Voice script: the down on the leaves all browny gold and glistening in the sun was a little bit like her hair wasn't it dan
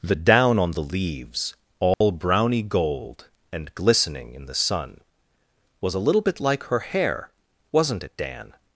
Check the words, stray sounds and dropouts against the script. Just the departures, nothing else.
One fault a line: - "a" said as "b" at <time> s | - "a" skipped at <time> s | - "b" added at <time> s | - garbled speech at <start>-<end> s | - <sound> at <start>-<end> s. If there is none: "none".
- dropout at 1.9-2.0 s